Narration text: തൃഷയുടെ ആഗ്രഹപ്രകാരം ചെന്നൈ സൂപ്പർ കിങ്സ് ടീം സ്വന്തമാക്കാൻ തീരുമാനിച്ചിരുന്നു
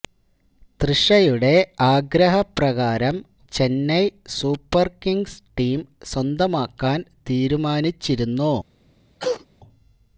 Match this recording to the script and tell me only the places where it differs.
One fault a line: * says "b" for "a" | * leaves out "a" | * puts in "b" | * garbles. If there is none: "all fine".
all fine